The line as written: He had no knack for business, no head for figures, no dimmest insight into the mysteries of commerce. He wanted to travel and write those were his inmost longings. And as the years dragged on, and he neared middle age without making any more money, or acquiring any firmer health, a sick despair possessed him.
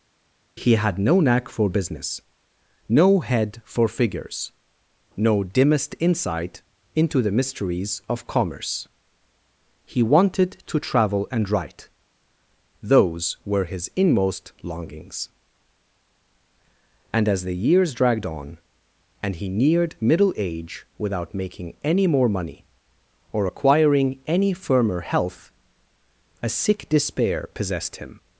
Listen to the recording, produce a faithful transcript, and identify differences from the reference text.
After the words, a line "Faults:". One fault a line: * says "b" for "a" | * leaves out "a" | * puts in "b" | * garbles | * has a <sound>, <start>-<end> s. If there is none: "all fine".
He had no knack for business, no head for figures, no dimmest insight into the mysteries of commerce. He wanted to travel and write those were his inmost longings. And as the years dragged on, and he neared middle age without making any more money, or acquiring any firmer health, a sick despair possessed him.
Faults:
all fine